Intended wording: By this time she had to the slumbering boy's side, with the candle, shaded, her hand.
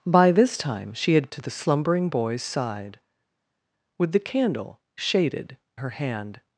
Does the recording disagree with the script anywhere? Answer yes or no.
no